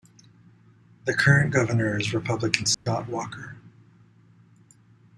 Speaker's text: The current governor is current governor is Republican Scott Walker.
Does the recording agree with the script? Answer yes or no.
no